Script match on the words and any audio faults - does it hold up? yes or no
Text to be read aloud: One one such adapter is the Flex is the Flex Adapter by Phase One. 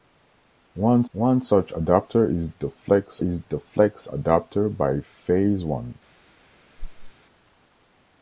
no